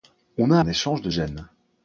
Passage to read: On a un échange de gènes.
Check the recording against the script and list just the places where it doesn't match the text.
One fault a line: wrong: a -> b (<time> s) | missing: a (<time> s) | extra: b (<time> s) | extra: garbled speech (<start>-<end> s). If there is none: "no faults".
no faults